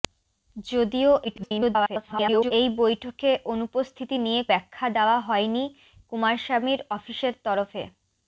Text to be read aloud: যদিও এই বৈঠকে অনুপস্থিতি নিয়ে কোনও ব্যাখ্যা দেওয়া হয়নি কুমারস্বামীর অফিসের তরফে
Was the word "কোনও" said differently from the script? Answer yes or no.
yes